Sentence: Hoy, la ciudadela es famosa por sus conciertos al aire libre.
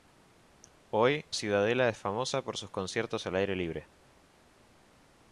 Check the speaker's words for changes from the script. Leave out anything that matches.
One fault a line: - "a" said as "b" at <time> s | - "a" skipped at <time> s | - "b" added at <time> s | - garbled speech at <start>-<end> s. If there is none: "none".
- "la" skipped at 1.3 s